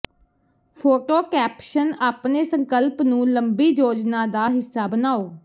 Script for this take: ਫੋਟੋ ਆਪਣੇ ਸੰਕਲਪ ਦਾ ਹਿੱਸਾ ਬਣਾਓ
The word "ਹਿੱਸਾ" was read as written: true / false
true